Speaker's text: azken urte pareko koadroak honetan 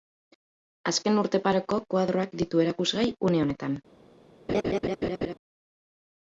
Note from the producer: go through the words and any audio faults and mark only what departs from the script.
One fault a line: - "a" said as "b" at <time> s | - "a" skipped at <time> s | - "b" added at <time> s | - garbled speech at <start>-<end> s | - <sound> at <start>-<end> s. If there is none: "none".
- "ditu erakusgai une" added at 2.4 s
- laugh at 4.5-5.3 s